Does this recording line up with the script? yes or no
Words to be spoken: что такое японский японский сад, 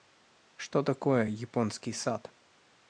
no